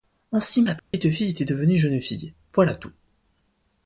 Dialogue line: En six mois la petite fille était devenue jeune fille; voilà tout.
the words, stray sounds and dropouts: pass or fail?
fail